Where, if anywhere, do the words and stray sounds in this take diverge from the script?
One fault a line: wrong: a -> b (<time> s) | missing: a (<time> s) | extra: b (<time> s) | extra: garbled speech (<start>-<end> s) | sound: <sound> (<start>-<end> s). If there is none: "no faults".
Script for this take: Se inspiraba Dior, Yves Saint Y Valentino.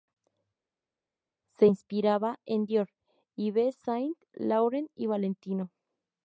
extra: en (2.5 s)
extra: Laurent (4.3 s)